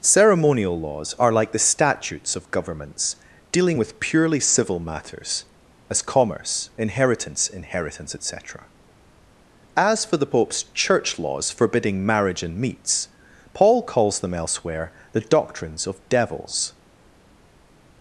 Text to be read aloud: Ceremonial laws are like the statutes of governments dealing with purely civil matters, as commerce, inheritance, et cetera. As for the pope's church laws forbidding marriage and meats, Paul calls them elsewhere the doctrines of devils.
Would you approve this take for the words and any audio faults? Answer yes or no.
no